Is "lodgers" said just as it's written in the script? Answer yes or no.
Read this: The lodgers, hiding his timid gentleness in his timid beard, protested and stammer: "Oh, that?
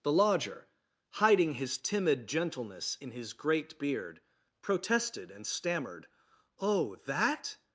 no